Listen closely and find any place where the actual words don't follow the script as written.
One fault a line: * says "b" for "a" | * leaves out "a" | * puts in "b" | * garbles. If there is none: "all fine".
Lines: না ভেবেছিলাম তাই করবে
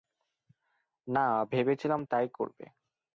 all fine